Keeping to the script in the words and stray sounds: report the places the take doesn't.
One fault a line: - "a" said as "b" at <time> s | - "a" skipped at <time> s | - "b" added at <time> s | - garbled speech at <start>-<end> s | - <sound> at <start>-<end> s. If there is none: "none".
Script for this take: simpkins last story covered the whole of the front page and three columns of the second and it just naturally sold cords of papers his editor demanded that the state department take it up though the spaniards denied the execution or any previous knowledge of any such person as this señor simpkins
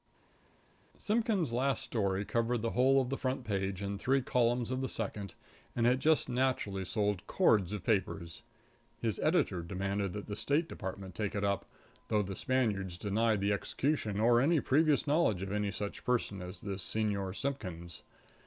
none